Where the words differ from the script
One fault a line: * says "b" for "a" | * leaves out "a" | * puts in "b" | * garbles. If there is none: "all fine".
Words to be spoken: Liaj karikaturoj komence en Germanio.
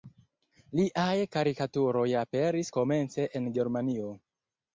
* puts in "aperis"